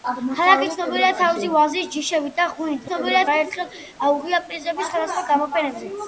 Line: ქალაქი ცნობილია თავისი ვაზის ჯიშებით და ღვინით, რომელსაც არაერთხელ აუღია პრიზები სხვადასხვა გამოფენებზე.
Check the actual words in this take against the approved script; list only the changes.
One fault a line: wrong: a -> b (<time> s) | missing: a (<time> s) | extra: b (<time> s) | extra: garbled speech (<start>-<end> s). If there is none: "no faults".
wrong: რომელსაც -> ცნობილია (2.9 s)